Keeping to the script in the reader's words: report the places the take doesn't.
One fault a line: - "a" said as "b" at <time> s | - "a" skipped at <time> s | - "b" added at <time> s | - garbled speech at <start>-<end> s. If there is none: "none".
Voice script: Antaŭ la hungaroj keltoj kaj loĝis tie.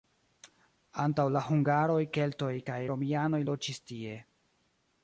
- "romianoj" added at 2.9 s